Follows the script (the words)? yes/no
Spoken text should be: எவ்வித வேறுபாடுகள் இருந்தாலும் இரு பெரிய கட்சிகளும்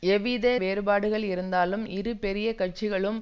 yes